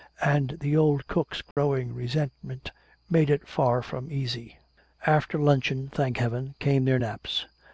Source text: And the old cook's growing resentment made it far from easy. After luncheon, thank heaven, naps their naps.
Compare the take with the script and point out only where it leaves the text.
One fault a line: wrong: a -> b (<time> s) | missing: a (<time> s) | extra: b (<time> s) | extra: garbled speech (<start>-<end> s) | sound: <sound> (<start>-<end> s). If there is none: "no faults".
sound: dropout (1.5-1.6 s)
wrong: naps -> came (6.6 s)